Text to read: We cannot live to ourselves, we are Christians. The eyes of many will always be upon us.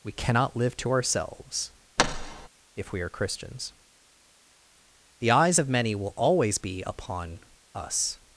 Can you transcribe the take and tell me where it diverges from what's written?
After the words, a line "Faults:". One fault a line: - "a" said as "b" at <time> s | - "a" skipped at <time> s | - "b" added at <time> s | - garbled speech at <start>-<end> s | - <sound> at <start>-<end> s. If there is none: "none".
We cannot live to ourselves, if we are Christians. The eyes of many will always be upon us.
Faults:
- thud at 2.0-2.5 s
- "if" added at 2.8 s